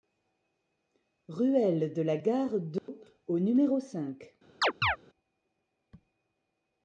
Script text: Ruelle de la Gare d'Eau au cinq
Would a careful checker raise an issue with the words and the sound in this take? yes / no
yes